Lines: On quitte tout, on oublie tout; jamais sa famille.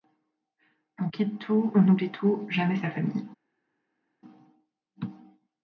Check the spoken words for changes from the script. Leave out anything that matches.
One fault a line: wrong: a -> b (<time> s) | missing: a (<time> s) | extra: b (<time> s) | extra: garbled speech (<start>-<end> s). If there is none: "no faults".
no faults